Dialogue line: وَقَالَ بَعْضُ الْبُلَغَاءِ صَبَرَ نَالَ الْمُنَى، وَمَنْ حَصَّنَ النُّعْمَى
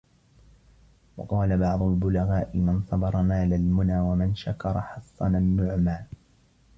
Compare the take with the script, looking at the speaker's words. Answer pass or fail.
fail